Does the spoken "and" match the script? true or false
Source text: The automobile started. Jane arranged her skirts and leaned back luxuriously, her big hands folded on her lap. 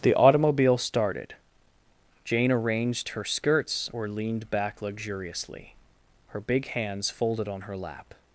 false